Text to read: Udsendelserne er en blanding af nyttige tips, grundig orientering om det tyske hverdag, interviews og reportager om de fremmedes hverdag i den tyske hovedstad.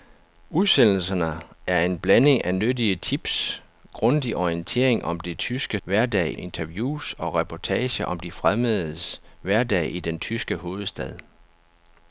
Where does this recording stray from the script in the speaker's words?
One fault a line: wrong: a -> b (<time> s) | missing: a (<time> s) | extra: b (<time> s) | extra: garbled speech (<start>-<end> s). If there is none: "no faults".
no faults